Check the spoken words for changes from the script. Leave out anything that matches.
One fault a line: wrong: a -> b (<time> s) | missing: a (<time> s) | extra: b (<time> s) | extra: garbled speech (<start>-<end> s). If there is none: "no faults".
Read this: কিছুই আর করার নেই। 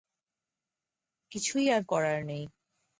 no faults